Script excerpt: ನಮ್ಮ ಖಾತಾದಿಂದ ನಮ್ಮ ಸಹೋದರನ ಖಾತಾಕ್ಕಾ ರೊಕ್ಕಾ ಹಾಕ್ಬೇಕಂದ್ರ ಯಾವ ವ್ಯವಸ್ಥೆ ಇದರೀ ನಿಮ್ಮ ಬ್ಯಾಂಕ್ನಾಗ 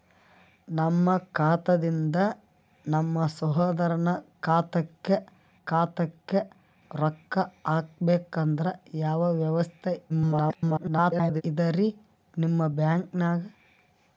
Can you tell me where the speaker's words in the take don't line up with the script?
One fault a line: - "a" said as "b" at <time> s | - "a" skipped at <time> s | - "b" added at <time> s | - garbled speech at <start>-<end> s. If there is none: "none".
- "ಖಾತಾಕ್ಕಾ" added at 5.6 s
- garbled speech at 10.1-11.4 s